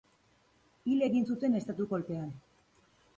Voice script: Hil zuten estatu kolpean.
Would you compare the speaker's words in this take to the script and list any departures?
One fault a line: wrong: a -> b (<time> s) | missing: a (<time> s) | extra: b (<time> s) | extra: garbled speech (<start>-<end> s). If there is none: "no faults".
extra: egin (1.1 s)